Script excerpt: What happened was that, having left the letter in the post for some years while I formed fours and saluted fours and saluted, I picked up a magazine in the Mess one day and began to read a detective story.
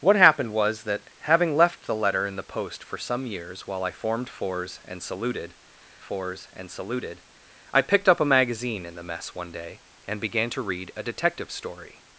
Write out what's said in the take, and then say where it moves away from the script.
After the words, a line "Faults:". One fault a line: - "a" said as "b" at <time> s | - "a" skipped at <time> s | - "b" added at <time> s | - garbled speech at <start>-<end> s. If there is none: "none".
What happened was that, having left the letter in the post for some years while I formed fours and saluted fours and saluted, I picked up a magazine in the Mess one day and began to read a detective story.
Faults:
none